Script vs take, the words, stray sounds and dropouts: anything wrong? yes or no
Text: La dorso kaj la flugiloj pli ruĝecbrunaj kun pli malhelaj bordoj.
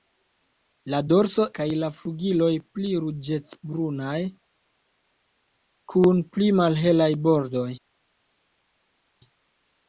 no